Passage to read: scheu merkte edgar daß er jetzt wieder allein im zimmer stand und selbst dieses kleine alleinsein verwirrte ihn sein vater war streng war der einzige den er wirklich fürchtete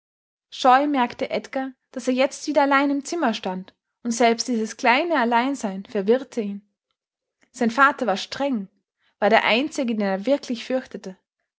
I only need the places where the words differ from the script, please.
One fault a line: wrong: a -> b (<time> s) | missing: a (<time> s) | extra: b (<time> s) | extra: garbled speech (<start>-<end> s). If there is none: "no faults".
no faults